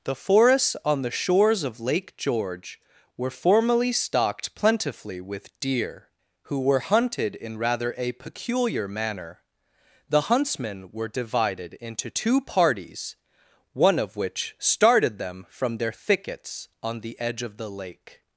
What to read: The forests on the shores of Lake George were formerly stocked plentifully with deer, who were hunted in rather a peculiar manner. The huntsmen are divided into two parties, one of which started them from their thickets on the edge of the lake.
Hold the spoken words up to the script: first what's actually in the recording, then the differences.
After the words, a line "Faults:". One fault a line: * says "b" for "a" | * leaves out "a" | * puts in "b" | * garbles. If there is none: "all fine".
The forests on the shores of Lake George were formerly stocked plentifully with deer, who were hunted in rather a peculiar manner. The huntsmen were divided into two parties, one of which started them from their thickets on the edge of the lake.
Faults:
* says "were" for "are"